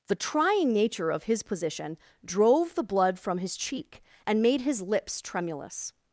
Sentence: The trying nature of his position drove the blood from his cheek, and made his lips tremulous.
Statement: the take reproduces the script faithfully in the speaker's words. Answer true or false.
true